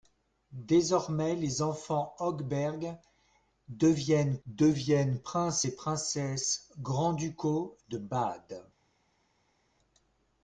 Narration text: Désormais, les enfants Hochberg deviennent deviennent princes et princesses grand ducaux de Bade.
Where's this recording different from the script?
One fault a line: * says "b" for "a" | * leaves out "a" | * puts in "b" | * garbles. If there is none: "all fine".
all fine